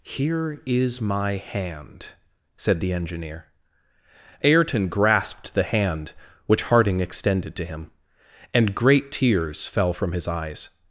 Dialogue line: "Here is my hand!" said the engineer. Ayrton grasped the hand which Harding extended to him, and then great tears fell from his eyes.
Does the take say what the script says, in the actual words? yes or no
no